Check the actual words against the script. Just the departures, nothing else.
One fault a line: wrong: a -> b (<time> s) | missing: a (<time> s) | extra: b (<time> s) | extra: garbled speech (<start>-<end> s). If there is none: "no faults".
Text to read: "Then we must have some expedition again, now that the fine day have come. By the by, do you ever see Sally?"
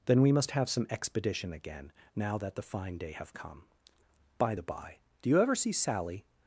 no faults